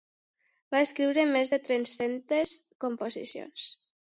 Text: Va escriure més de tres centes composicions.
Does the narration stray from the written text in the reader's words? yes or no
no